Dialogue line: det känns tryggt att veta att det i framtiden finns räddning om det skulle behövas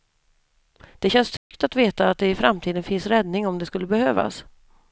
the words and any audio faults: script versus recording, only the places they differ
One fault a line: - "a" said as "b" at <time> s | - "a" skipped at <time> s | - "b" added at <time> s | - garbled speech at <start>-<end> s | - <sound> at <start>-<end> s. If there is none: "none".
- dropout at 1.4-1.5 s